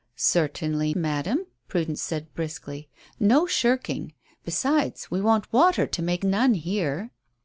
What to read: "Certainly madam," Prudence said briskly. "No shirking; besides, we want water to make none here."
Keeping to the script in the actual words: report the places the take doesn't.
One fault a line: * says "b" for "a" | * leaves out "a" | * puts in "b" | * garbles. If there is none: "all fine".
all fine